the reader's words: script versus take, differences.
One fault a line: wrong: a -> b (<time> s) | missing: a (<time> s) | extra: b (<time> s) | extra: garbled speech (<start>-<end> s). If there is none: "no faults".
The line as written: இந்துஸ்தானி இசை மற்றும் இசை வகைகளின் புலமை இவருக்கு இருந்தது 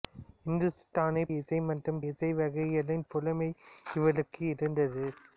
no faults